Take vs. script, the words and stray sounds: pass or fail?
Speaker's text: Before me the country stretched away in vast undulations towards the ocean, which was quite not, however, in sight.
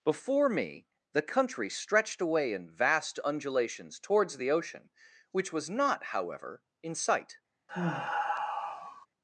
fail